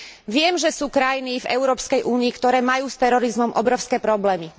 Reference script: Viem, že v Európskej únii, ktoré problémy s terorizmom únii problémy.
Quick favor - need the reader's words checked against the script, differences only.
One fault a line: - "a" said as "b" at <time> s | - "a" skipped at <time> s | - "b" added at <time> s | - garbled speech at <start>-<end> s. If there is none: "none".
- "sú krajiny" added at 0.7 s
- "problémy" said as "majú" at 2.6 s
- "únii" said as "obrovské" at 3.5 s